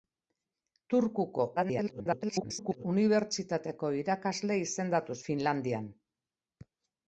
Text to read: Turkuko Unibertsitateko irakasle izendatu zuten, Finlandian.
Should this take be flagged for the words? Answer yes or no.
yes